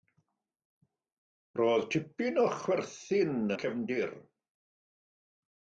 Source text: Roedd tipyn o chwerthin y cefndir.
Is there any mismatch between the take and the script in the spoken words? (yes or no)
no